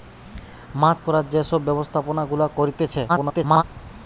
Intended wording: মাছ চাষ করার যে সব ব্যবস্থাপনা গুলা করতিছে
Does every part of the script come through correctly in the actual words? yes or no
no